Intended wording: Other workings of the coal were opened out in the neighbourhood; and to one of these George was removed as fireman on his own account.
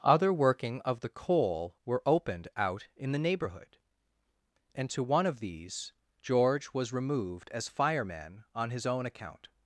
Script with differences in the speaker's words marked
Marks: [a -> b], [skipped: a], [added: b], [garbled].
Other [workings -> working] of the coal were opened out in the neighbourhood; and to one of these George was removed as fireman on his own account.